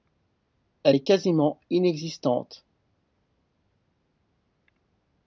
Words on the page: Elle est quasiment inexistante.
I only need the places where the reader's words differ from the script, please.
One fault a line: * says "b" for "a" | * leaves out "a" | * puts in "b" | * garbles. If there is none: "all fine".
all fine